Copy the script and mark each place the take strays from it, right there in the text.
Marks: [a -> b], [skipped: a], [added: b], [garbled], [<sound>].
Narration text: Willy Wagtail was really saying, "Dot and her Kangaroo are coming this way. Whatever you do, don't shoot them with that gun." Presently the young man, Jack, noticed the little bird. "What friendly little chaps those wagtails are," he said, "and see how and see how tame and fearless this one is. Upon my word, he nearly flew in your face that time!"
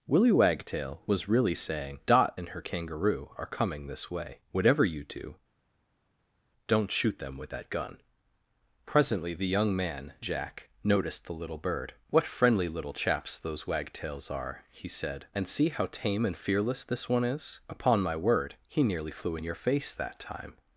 Willy Wagtail was really saying, "Dot and her Kangaroo are coming this way. Whatever you do, don't shoot them with that gun." Presently the young man, Jack, noticed the little bird. "What friendly little chaps those wagtails are," he said, "and see how [skipped: and see how] tame and fearless this one is. Upon my word, he nearly flew in your face that time!"